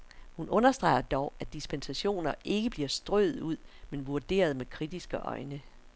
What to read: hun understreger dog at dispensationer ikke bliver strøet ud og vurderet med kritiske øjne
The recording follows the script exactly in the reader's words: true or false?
false